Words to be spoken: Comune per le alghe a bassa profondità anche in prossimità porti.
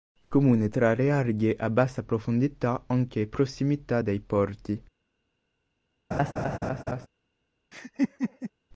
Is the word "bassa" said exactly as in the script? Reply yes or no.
yes